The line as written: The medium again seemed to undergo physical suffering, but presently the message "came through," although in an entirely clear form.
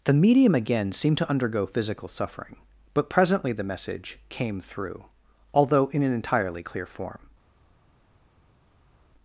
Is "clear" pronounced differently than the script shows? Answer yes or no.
no